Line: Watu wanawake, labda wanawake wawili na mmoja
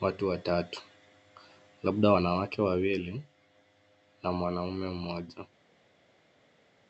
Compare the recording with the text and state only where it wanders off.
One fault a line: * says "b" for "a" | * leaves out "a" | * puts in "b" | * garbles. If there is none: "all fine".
* says "watatu" for "wanawake"
* puts in "mwanaume"